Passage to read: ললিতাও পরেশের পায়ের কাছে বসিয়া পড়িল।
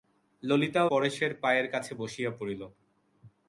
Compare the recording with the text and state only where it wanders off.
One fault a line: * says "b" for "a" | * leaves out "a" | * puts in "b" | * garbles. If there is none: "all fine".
all fine